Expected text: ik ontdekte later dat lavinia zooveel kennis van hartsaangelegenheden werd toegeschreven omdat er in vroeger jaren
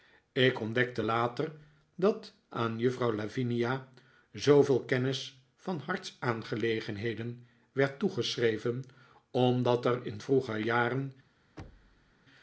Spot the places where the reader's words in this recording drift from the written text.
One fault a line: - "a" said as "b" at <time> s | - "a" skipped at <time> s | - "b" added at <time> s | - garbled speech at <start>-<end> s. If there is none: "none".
- "aan juffrouw" added at 2.5 s